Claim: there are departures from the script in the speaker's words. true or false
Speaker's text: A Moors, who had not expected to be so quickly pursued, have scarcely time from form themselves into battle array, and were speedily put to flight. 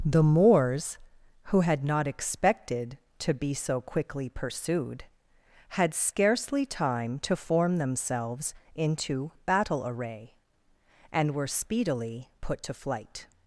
true